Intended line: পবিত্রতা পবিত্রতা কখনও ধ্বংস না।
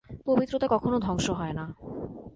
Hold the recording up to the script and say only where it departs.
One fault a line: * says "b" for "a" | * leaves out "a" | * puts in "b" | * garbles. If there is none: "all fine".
* leaves out "পবিত্রতা"
* puts in "হয়"